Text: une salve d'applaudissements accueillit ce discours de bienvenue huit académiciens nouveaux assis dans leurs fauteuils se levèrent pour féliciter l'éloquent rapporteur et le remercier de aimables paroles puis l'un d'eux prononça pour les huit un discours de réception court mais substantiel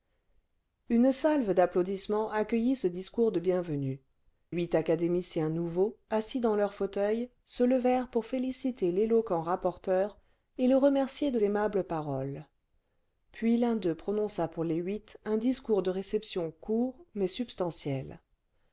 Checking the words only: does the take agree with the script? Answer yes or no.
yes